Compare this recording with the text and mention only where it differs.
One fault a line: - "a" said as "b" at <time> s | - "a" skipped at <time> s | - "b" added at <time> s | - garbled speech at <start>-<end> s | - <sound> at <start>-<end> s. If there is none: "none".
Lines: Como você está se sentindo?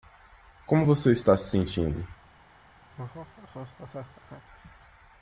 - laugh at 2.9-4.4 s